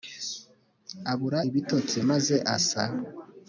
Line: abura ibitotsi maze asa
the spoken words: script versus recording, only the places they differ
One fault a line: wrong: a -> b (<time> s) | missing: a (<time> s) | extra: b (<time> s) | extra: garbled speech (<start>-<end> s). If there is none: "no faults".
no faults